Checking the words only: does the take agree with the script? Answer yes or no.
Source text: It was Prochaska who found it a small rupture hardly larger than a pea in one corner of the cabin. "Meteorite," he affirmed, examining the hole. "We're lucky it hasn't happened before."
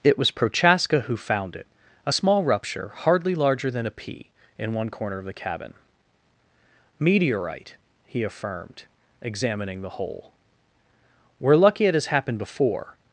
no